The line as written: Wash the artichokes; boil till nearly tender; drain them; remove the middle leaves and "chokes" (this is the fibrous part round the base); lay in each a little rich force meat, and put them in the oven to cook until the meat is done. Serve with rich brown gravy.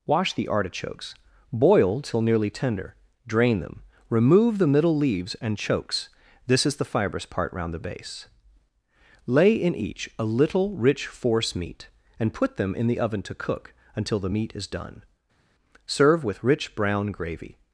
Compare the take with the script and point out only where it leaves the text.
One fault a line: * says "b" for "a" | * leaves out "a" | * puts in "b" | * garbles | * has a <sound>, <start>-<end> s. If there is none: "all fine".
all fine